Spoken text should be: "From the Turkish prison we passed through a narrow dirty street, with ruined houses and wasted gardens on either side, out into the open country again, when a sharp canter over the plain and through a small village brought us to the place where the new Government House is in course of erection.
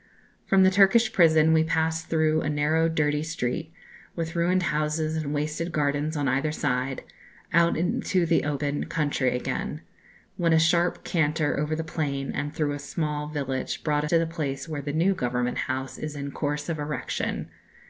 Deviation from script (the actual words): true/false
true